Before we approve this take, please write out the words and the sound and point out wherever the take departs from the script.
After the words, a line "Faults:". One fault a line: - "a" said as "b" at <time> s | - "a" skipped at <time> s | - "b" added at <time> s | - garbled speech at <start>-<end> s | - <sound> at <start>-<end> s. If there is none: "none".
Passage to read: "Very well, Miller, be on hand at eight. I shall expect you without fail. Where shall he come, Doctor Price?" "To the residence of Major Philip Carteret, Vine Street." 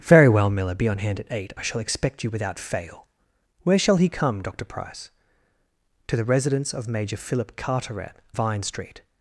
"Very well, Miller, be on hand at eight. I shall expect you without fail. Where shall he come, Doctor Price?" "To the residence of Major Philip Carteret, Vine Street."
Faults:
none